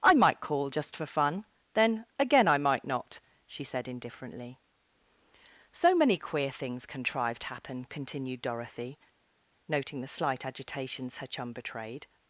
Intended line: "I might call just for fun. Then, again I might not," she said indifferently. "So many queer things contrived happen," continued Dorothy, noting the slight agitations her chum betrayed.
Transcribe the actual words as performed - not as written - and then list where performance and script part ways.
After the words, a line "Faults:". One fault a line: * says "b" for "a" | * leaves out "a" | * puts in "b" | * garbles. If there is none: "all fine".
"I might call just for fun. Then, again I might not," she said indifferently. "So many queer things contrived happen," continued Dorothy, noting the slight agitations her chum betrayed.
Faults:
all fine